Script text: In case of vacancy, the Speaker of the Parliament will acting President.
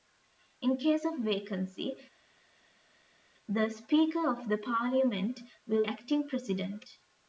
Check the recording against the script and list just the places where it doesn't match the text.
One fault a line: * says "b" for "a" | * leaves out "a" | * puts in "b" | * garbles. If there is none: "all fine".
all fine